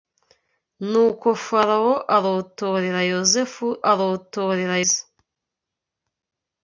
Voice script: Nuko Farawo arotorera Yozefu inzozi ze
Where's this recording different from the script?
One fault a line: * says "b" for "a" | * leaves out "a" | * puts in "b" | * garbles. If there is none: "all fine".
* says "arotorera" for "inzozi"